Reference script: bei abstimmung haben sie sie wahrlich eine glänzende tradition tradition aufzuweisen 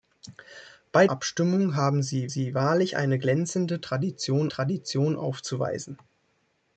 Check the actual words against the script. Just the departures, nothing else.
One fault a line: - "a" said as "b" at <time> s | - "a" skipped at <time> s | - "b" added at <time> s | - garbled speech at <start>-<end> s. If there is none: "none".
none